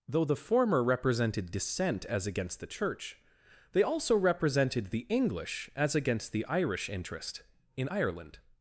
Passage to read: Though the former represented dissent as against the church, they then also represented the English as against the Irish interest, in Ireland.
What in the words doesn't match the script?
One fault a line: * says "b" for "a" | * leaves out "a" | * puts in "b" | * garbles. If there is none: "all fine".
* leaves out "then"